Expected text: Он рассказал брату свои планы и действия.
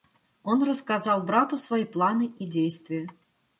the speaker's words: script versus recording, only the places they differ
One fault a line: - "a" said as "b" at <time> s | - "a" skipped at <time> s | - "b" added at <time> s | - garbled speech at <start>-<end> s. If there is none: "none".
none